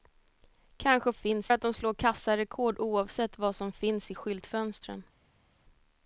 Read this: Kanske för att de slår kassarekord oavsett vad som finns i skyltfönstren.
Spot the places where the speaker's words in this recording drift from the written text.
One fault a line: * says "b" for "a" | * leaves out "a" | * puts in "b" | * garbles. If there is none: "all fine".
* says "finns" for "för"